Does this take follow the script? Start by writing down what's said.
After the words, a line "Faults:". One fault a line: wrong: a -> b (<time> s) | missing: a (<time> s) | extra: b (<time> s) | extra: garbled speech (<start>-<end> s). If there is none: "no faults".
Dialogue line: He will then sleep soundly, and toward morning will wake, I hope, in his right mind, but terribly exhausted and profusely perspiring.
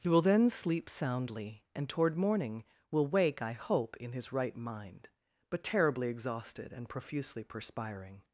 He will then sleep soundly, and toward morning will wake, I hope, in his right mind, but terribly exhausted and profusely perspiring.
Faults:
no faults